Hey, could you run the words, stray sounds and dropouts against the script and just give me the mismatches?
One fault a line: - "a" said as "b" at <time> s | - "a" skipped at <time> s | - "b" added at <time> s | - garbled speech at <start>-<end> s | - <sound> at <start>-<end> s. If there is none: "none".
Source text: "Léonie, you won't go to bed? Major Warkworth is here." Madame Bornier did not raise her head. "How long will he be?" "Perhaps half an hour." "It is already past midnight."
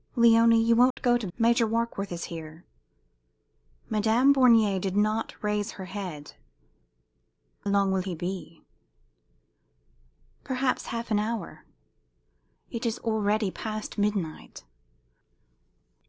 - dropout at 0.9-1.0 s
- "bed" skipped at 1.3 s
- "How" skipped at 6.3 s